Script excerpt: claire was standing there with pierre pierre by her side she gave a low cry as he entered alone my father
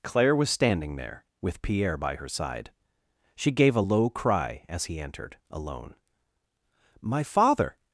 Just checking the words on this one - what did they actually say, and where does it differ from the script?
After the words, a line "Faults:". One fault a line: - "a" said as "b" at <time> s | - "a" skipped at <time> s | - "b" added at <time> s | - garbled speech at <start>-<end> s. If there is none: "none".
claire was standing there with pierre by her side she gave a low cry as he entered alone my father
Faults:
- "pierre" skipped at 2.0 s